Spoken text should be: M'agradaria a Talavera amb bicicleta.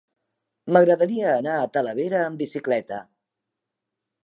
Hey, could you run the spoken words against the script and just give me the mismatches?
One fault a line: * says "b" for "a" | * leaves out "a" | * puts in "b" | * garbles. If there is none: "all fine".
* puts in "anar"